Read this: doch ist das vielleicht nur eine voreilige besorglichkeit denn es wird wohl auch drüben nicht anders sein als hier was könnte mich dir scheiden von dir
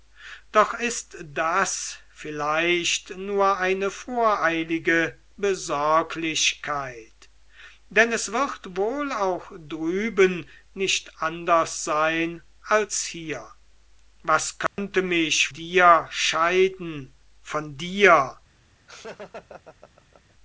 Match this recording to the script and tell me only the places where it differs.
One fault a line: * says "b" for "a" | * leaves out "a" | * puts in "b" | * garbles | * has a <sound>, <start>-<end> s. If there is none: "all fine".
* has a dropout, 14.7-14.8 s
* has a laugh, 18.9-20.3 s